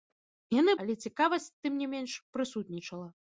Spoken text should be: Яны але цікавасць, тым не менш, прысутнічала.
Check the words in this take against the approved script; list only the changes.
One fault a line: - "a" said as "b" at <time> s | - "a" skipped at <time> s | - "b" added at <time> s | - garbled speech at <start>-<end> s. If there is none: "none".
none